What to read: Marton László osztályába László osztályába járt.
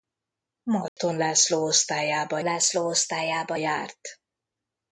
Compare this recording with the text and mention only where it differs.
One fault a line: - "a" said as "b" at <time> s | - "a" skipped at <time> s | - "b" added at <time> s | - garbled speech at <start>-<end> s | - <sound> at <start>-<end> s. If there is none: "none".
- dropout at 0.9-1.0 s